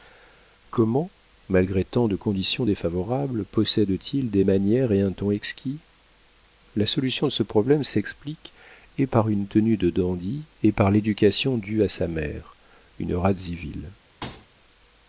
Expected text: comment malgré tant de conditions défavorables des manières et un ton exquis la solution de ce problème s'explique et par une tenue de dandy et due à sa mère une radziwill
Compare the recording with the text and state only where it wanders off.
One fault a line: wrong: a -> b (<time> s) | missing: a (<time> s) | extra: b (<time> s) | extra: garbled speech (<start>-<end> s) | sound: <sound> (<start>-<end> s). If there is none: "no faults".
extra: possède t il (3.4 s)
extra: par l'éducation (10.7 s)
sound: thud (14.2-14.5 s)